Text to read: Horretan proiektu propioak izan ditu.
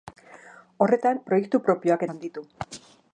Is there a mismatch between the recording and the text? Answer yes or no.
no